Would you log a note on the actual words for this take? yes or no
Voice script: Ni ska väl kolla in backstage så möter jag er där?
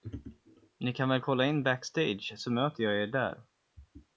yes